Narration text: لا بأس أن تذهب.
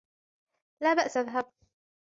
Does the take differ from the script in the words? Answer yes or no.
yes